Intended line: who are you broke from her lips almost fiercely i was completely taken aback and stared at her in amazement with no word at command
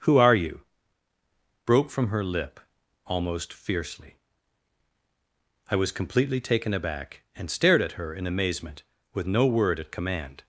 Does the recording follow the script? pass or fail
fail